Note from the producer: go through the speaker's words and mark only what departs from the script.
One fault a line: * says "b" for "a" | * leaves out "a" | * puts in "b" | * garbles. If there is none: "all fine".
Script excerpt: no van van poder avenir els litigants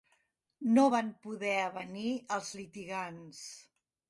* leaves out "van"